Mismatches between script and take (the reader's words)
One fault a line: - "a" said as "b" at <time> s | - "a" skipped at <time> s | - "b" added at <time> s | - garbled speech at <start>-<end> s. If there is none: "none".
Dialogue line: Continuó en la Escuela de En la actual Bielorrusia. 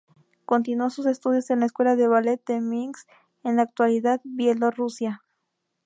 - "sus estudios" added at 0.9 s
- "Ballet de Minsk" added at 2.1 s